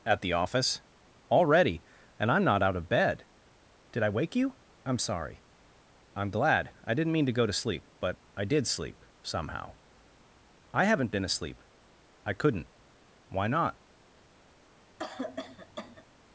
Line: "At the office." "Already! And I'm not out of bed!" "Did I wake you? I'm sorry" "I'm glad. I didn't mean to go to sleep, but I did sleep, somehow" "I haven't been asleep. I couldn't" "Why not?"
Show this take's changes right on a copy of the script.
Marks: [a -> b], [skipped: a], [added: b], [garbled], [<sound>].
"At the office." "Already! And I'm not out of bed!" "Did I wake you? I'm sorry" "I'm glad. I didn't mean to go to sleep, but I did sleep, somehow" "I haven't been asleep. I couldn't" "Why not?" [cough]